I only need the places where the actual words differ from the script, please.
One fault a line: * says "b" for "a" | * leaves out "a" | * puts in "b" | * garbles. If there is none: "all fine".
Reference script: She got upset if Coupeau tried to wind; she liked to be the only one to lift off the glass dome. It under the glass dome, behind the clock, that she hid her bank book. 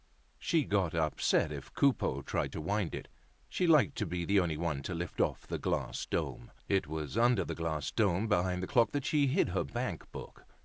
* puts in "it"
* puts in "was"